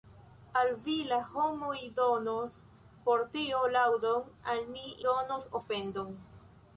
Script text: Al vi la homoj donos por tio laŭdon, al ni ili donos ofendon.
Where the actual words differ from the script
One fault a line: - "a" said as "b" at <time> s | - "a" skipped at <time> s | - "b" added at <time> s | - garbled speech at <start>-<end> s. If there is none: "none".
- "ili" skipped at 4.9 s